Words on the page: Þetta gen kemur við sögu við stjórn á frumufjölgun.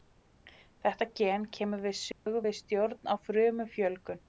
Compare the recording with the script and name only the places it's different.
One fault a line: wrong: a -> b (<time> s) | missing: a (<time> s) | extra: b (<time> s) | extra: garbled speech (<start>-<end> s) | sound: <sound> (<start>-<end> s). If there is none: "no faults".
sound: dropout (2.1-2.3 s)